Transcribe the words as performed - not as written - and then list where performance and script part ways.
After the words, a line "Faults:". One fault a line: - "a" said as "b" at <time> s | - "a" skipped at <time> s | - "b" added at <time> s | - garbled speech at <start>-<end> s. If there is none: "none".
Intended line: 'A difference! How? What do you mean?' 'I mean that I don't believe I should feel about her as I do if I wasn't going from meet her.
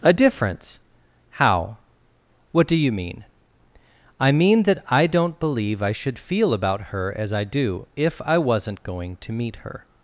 'A difference! How? What do you mean?' 'I mean that I don't believe I should feel about her as I do if I wasn't going to meet her.
Faults:
- "from" said as "to" at 9.2 s